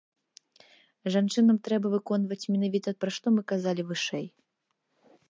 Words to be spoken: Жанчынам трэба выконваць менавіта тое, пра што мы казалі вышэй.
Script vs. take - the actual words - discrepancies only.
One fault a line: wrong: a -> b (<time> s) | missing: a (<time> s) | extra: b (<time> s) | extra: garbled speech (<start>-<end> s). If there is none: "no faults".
missing: тое (2.9 s)